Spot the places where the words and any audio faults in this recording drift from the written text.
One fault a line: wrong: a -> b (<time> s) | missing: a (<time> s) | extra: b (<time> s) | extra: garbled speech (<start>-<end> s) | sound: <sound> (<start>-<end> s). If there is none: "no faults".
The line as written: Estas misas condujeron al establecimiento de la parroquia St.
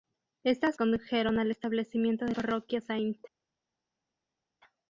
missing: misas (0.8 s)
missing: la (2.3 s)